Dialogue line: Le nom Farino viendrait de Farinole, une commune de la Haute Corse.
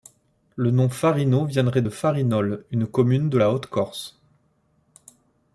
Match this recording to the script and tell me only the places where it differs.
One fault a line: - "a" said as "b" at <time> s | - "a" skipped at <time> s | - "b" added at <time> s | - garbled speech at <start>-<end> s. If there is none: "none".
none